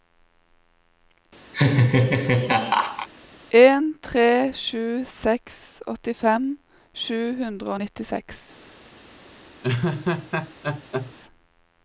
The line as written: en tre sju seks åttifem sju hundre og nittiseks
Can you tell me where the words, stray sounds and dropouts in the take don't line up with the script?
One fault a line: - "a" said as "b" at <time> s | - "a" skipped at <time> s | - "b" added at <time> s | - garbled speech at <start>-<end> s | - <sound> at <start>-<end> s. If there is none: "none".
- laugh at 1.5-3.1 s
- laugh at 9.6-11.1 s